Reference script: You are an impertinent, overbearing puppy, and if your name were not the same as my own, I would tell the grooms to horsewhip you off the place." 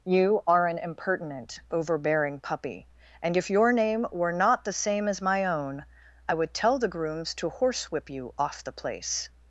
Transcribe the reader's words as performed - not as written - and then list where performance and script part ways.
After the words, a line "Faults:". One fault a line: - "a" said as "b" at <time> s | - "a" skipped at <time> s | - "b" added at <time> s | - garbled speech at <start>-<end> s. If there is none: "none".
You are an impertinent, overbearing puppy, and if your name were not the same as my own, I would tell the grooms to horsewhip you off the place."
Faults:
none